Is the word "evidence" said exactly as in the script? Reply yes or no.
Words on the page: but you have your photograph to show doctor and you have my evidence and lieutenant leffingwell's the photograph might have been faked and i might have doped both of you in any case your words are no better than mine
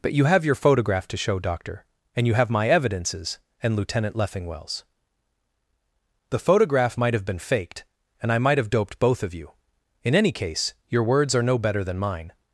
no